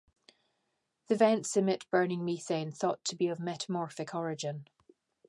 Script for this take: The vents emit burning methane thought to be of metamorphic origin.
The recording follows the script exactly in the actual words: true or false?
true